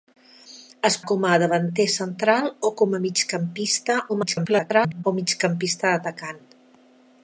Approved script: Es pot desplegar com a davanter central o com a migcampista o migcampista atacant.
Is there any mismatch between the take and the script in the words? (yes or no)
yes